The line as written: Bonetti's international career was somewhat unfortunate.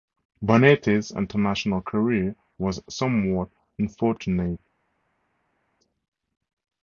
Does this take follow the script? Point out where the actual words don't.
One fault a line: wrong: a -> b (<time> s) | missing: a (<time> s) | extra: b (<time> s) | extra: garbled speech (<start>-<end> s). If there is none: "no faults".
no faults